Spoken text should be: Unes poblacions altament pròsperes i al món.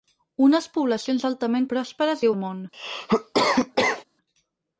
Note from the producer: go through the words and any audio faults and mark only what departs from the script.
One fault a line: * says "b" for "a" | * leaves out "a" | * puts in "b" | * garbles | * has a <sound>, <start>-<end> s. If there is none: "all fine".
* has a cough, 2.7-4.0 s